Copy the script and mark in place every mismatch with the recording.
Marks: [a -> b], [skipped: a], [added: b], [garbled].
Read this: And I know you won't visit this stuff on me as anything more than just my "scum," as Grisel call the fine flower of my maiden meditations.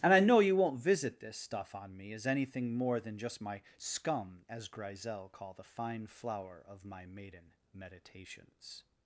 And I know you won't visit this stuff on me as anything more than just my "scum," as Grisel call the fine flower of my maiden meditations.